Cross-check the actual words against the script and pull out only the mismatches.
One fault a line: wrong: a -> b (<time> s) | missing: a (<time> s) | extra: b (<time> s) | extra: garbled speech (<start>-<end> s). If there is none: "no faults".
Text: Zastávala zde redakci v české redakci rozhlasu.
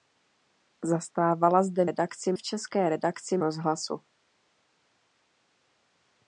no faults